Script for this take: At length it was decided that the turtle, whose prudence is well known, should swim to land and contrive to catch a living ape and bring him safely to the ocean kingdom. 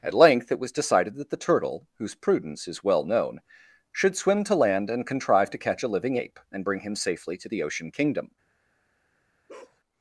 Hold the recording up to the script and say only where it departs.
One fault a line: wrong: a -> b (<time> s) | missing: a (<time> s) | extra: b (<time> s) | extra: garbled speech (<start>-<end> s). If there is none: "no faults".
no faults